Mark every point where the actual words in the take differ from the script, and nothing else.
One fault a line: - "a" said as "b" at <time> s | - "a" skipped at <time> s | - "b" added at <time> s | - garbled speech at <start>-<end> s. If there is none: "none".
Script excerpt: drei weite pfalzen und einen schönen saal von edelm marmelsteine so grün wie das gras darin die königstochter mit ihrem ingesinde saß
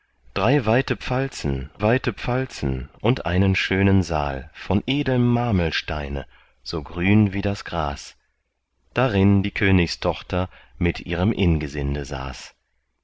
- "weite pfalzen" added at 1.8 s